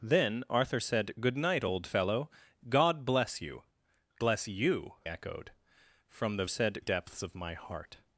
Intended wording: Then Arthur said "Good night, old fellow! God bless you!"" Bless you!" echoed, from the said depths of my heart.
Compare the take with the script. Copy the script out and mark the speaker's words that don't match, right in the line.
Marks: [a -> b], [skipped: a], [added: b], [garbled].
Then Arthur said "Good night, old fellow! God bless you!"" Bless you!" echoed, from the said depths of my heart.